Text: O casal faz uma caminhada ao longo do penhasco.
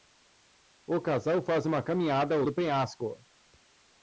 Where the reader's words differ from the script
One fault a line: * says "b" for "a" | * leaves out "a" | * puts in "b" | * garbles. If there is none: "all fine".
* leaves out "longo"